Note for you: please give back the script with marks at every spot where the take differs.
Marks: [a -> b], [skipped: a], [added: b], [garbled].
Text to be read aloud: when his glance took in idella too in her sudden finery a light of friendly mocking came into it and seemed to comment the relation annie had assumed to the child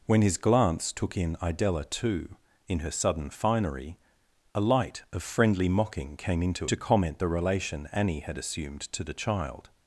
when his glance took in idella too in her sudden finery a light of friendly mocking came into [skipped: it and seemed] to comment the relation annie had assumed to the child